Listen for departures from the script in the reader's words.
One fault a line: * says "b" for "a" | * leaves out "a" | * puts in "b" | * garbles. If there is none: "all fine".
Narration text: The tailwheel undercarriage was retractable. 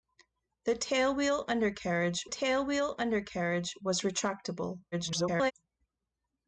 * puts in "tailwheel undercarriage"
* garbles